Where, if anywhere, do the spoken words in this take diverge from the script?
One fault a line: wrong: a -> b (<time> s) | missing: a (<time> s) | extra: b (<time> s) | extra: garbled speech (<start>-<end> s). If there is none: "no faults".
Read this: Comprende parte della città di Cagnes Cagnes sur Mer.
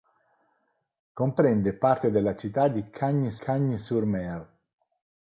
no faults